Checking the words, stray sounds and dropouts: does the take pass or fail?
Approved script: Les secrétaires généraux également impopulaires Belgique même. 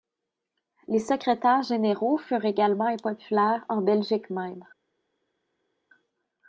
fail